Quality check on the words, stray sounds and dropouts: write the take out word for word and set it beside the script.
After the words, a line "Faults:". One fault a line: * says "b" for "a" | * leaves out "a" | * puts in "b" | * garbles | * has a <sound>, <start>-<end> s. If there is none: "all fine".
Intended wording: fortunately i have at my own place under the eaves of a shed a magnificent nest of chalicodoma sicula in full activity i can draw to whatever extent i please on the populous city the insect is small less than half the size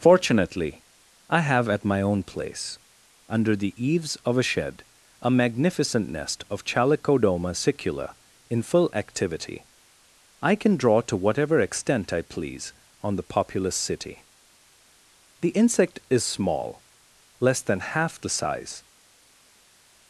fortunately i have at my own place under the eaves of a shed a magnificent nest of chalicodoma sicula in full activity i can draw to whatever extent i please on the populous city the insect is small less than half the size
Faults:
all fine